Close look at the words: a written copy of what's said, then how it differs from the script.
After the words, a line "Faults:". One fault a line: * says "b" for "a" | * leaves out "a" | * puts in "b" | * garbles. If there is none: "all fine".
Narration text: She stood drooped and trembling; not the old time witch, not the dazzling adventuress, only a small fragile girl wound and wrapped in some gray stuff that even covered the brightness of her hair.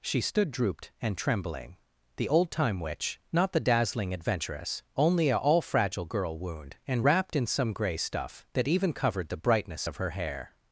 She stood drooped and trembling; the old time witch, not the dazzling adventuress, only a all fragile girl wound and wrapped in some gray stuff that even covered the brightness of her hair.
Faults:
* leaves out "not"
* says "all" for "small"